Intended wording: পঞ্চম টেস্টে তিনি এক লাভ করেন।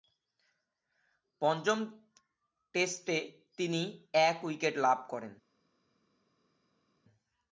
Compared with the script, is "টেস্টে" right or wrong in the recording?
right